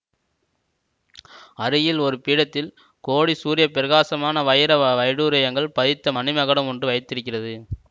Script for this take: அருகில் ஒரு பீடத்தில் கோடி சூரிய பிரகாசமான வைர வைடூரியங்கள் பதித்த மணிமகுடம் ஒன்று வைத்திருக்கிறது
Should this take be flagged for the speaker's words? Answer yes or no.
no